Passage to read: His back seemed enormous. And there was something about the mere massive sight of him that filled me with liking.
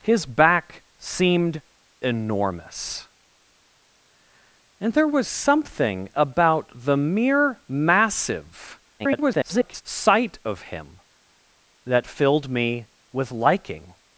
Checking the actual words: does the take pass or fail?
fail